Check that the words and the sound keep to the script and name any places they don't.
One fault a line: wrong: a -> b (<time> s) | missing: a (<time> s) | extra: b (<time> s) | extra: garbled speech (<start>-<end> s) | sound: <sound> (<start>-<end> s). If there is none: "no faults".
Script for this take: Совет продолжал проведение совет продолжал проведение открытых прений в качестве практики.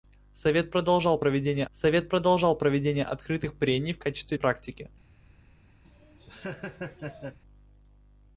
sound: laugh (5.8-7.4 s)